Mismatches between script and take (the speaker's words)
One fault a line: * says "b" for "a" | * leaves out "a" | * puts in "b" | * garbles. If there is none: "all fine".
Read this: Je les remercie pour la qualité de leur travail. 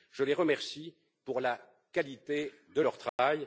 all fine